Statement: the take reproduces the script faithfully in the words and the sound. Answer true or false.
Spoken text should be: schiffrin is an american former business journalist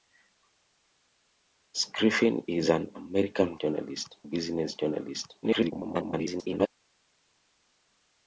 false